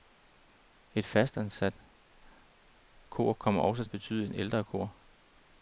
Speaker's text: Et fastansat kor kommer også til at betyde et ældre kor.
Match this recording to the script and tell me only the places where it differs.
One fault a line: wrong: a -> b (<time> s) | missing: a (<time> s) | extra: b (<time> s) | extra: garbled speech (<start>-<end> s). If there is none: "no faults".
missing: til (3.9 s)